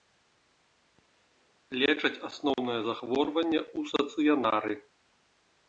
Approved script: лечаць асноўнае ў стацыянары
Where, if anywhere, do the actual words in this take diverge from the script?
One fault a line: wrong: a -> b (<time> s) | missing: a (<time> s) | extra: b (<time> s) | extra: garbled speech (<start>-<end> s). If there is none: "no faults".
extra: захворванне (2.9 s)